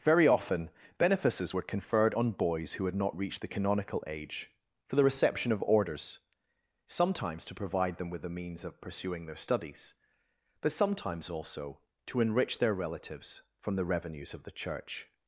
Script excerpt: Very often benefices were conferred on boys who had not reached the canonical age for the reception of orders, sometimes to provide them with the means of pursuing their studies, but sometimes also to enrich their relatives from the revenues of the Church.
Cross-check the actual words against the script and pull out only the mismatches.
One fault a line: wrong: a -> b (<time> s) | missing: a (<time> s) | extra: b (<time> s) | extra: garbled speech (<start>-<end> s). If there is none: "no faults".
no faults